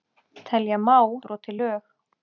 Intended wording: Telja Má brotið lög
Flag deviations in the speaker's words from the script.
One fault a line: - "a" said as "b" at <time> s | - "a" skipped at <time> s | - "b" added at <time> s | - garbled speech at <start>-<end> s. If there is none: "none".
none